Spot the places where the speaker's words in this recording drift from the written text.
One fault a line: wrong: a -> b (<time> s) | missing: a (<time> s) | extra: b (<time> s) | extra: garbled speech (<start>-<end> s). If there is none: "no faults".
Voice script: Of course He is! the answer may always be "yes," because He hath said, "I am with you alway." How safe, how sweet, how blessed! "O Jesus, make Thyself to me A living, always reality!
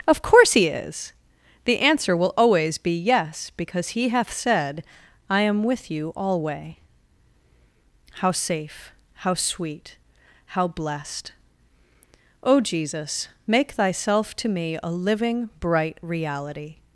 wrong: may -> will (2.2 s)
wrong: always -> bright (15.6 s)